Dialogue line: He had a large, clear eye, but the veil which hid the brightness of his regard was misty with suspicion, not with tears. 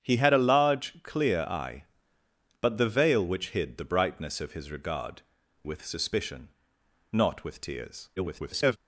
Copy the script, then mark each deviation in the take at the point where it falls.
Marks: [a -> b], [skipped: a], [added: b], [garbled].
He had a large, clear eye, but the veil which hid the brightness of his regard [skipped: was misty] with suspicion, not with tears. [garbled]